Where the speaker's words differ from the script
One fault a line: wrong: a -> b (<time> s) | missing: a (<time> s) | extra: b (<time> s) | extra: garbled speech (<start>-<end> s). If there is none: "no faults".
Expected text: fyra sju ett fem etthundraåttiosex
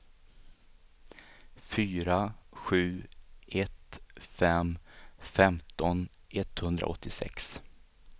extra: femton (5.2 s)